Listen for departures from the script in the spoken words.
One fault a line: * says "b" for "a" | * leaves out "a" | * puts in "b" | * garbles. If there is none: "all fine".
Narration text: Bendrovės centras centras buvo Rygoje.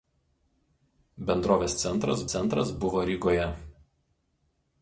all fine